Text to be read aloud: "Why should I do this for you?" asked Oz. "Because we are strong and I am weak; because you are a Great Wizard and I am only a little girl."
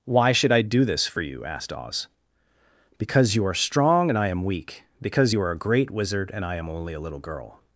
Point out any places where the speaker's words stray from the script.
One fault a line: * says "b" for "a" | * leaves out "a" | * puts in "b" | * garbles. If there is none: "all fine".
* says "you" for "we"